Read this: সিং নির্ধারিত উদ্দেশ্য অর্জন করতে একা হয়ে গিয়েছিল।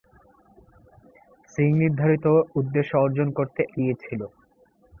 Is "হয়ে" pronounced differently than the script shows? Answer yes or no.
yes